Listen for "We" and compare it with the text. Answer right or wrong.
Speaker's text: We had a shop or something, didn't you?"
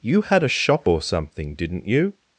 wrong